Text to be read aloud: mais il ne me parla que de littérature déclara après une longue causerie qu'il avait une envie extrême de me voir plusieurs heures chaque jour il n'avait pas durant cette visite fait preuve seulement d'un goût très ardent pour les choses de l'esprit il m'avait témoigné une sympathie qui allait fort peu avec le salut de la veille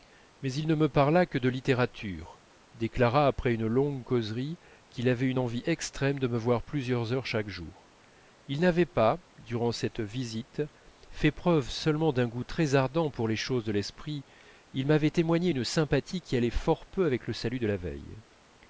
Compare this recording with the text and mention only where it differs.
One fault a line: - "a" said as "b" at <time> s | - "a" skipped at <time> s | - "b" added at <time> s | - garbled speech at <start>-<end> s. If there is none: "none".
none